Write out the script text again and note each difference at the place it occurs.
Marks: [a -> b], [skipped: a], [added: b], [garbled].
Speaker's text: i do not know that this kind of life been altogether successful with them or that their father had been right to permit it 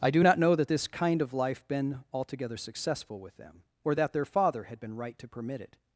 i do not know that this kind of life been altogether successful with them or that their father had been right to permit it